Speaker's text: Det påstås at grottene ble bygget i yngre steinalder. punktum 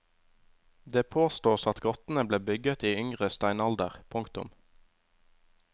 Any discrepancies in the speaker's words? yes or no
no